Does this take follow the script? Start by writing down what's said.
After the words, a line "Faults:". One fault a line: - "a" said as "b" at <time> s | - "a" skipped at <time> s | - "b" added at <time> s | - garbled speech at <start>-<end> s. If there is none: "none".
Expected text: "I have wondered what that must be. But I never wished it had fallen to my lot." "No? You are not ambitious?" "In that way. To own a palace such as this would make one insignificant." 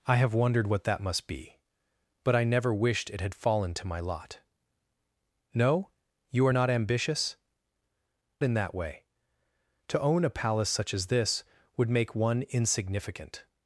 "I have wondered what that must be. But I never wished it had fallen to my lot." "No? You are not ambitious?" "In that way. To own a palace such as this would make one insignificant."
Faults:
none